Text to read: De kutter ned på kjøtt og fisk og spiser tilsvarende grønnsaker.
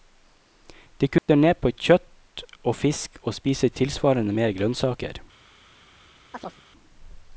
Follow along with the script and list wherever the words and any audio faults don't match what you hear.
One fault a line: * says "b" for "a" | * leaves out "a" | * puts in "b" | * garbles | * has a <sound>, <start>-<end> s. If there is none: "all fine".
* has a dropout, 1.2-1.3 s
* puts in "mer"
* has a chirp, 6.3-6.6 s